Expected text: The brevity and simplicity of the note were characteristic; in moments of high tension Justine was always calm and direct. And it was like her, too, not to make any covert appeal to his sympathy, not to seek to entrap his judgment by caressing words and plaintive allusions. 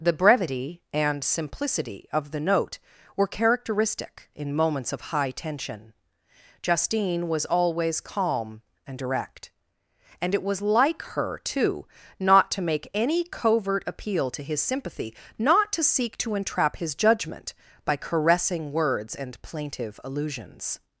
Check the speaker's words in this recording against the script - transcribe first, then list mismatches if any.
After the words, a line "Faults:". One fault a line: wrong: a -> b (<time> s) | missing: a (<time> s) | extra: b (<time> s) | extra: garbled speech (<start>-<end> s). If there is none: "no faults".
The brevity and simplicity of the note were characteristic; in moments of high tension Justine was always calm and direct. And it was like her, too, not to make any covert appeal to his sympathy, not to seek to entrap his judgment by caressing words and plaintive allusions.
Faults:
no faults